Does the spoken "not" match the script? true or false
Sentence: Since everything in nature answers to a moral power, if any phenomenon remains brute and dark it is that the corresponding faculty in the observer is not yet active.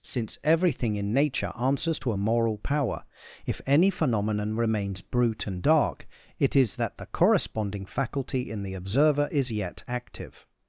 false